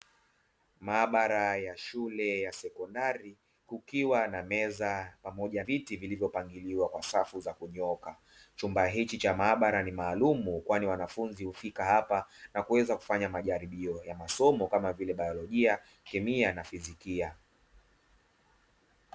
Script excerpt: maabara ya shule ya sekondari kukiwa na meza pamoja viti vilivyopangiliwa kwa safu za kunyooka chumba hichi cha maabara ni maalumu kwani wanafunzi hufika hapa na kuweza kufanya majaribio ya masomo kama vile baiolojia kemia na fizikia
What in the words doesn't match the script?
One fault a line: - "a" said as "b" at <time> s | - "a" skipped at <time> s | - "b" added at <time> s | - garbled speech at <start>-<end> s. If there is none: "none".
none